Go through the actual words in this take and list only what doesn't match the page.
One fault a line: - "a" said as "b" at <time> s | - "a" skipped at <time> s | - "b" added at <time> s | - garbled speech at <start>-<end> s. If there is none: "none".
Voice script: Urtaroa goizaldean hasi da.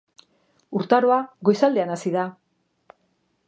none